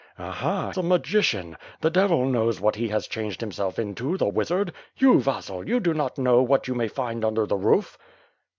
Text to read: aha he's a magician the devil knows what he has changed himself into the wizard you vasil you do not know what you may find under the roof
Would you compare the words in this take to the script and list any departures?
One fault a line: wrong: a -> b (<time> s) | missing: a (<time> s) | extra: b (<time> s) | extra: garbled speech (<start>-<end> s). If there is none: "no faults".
missing: he's (0.7 s)